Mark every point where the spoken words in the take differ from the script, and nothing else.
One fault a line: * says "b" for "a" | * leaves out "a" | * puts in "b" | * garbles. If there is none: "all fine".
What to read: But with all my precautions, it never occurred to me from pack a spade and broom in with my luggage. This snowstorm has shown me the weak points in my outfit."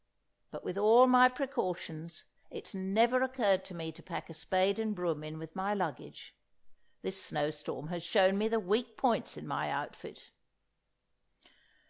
* says "to" for "from"